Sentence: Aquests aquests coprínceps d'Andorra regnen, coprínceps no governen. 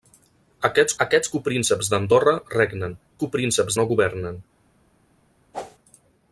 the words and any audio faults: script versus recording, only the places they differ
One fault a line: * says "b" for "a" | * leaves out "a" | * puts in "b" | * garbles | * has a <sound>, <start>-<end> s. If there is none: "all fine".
* has a whoosh, 5.5-5.8 s